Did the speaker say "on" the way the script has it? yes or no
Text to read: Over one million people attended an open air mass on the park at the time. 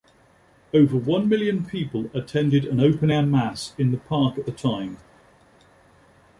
no